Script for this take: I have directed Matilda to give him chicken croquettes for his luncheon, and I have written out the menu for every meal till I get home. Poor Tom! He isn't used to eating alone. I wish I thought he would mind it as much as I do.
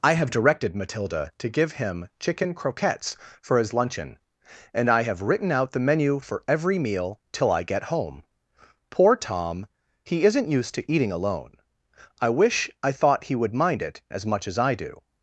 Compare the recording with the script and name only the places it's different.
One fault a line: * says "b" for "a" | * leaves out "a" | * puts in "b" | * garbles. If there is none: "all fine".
all fine